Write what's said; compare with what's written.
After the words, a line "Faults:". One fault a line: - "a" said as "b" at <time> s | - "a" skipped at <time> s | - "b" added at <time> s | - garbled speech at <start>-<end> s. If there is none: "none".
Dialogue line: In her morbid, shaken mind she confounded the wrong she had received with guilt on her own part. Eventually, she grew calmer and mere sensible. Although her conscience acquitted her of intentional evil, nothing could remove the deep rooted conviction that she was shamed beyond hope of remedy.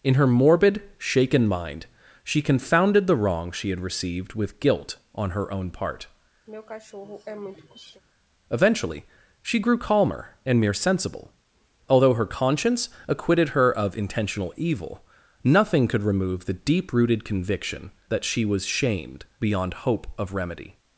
In her morbid, shaken mind she confounded the wrong she had received with guilt on her own part. Eventually, she grew calmer and mere sensible. Although her conscience acquitted her of intentional evil, nothing could remove the deep rooted conviction that she was shamed beyond hope of remedy.
Faults:
none